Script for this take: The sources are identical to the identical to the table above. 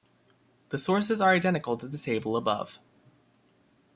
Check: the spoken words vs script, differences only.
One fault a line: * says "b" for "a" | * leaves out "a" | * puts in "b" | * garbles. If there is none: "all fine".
* leaves out "identical to the"